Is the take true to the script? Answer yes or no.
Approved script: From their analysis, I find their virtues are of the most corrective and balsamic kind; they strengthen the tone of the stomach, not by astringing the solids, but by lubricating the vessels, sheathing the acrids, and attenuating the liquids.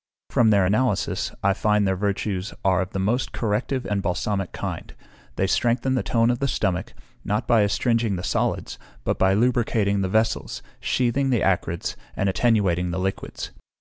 yes